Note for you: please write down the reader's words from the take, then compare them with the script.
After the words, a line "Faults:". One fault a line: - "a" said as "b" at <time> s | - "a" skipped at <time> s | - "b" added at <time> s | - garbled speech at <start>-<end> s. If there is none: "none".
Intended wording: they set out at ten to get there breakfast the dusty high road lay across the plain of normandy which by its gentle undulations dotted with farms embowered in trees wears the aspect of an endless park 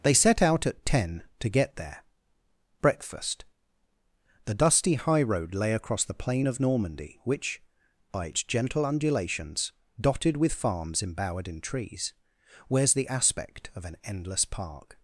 they set out at ten to get there breakfast the dusty high road lay across the plain of normandy which by its gentle undulations dotted with farms embowered in trees wears the aspect of an endless park
Faults:
none